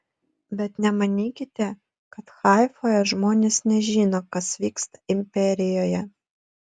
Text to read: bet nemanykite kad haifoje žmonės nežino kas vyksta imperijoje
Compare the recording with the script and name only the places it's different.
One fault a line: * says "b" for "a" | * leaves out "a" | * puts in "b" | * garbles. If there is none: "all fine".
all fine